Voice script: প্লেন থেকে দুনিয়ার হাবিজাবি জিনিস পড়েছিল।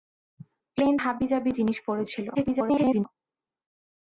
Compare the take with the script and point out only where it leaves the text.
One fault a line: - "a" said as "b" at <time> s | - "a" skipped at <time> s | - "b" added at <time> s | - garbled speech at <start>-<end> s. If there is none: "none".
- "থেকে দুনিয়ার" skipped at 0.9 s
- garbled speech at 2.3-3.0 s